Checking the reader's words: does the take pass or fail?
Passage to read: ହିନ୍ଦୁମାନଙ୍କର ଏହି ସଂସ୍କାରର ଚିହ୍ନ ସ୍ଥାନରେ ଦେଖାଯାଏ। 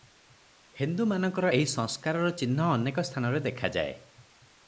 fail